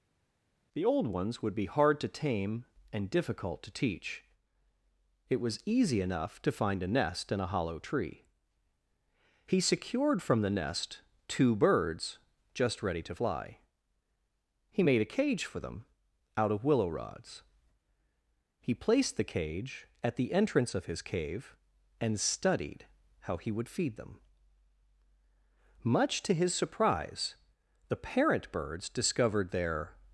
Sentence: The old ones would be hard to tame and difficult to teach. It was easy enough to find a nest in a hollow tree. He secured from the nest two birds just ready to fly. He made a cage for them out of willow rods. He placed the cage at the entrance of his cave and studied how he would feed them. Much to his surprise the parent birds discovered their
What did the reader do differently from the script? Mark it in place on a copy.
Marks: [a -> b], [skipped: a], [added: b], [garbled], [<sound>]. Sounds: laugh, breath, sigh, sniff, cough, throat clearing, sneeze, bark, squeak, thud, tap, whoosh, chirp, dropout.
The old ones would be hard to tame and difficult to teach. It was easy enough to find a nest in a hollow tree. He secured from the nest two birds just ready to fly. He made a cage for them out of willow rods. He placed the cage at the entrance of his cave and studied how he would feed them. Much to his surprise the parent birds discovered their